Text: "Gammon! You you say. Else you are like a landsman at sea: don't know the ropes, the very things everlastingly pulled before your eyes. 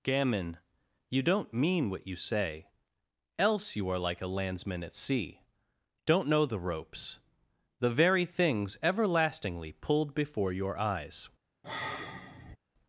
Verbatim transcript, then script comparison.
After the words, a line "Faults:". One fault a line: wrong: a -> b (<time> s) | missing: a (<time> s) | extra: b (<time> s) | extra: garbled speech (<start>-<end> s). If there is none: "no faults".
"Gammon! You don't mean what you say. Else you are like a landsman at sea: don't know the ropes, the very things everlastingly pulled before your eyes.
Faults:
extra: don't mean what (1.2 s)